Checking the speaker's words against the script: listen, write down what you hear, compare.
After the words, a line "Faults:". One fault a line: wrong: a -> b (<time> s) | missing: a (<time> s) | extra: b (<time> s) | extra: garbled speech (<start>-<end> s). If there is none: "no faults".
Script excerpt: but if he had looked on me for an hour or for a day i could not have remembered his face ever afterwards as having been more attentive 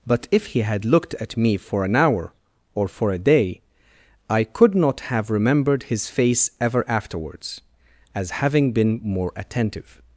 but if he had looked at me for an hour or for a day i could not have remembered his face ever afterwards as having been more attentive
Faults:
wrong: on -> at (1.2 s)